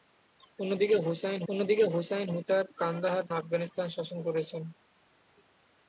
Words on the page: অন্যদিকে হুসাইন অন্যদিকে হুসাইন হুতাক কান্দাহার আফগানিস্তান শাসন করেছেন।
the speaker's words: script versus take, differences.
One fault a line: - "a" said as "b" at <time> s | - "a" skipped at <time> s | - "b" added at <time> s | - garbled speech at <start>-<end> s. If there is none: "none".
none